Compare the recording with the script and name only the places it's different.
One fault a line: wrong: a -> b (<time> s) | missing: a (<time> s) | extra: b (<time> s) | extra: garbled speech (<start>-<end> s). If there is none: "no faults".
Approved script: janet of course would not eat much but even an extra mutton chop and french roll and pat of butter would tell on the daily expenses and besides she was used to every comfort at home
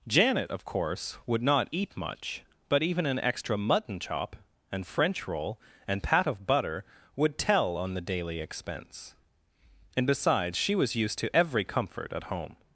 wrong: expenses -> expense (8.4 s)